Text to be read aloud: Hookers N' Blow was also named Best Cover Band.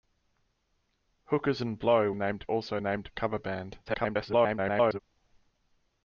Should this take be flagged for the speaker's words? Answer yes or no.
yes